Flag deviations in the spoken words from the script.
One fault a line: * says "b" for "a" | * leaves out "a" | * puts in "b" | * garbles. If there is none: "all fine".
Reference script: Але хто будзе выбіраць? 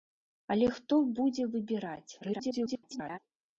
* garbles